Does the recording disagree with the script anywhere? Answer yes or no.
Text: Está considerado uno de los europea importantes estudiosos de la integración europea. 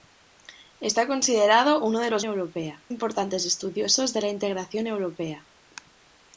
no